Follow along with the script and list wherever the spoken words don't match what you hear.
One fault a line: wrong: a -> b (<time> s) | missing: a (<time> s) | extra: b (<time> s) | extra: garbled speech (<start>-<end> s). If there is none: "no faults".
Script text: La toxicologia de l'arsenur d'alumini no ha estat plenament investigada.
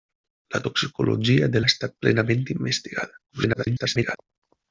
missing: l'arsenur d'alumini no (1.6 s)
extra: garbled speech (3.3-4.2 s)